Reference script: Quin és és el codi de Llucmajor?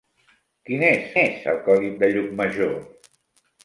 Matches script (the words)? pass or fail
pass